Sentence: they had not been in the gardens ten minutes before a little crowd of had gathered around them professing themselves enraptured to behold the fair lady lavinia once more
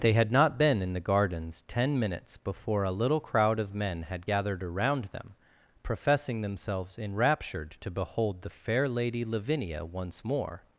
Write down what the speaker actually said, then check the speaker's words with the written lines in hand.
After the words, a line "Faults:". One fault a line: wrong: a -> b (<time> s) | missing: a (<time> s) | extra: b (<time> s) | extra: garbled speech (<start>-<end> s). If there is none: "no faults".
they had not been in the gardens ten minutes before a little crowd of men had gathered around them professing themselves enraptured to behold the fair lady lavinia once more
Faults:
extra: men (3.8 s)